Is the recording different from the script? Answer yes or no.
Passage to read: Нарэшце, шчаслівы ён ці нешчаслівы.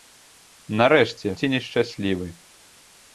yes